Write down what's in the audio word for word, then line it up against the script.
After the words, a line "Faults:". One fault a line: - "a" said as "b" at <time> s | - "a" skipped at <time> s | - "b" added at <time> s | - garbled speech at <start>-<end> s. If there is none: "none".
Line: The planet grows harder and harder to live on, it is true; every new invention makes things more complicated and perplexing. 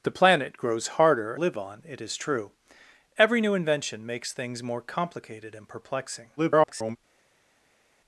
The planet grows harder live on, it is true; every new invention makes things more complicated and perplexing. [garbled]
Faults:
- "and harder to" skipped at 1.4 s
- garbled speech at 6.4-7.0 s